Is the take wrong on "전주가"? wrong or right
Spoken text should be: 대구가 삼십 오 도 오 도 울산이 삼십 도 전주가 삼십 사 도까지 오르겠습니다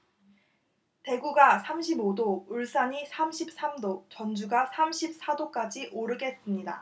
right